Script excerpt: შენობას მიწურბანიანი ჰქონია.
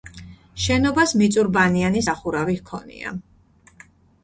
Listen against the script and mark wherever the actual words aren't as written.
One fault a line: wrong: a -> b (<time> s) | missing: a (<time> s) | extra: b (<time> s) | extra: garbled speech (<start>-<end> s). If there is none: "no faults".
extra: სახურავი (2.0 s)